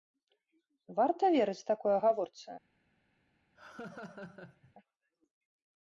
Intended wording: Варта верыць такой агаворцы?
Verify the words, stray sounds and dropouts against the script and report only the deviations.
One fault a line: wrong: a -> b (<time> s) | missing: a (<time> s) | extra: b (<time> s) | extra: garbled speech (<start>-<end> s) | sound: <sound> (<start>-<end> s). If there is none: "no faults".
sound: laugh (3.6-4.7 s)